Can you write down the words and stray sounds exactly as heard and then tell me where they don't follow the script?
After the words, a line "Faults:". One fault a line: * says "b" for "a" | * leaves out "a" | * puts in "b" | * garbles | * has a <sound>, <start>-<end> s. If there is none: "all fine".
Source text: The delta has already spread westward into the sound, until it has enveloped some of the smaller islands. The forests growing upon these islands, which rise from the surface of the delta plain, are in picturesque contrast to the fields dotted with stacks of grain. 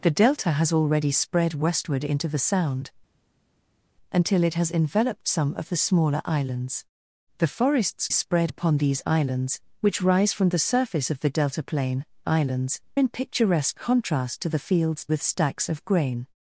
The delta has already spread westward into the sound, until it has enveloped some of the smaller islands. The forests spread upon these islands, which rise from the surface of the delta plain, islands in picturesque contrast to the fields with stacks of grain.
Faults:
* says "spread" for "growing"
* says "islands" for "are"
* leaves out "dotted"